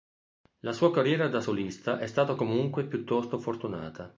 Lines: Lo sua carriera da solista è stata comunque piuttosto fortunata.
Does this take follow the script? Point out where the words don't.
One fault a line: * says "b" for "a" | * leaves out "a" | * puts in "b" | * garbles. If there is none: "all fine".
* says "La" for "Lo"